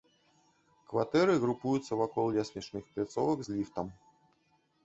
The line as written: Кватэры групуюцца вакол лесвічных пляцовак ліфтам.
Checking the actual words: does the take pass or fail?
fail